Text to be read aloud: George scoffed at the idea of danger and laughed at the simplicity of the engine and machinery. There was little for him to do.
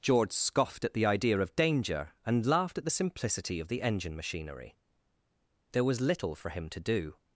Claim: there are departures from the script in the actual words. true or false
true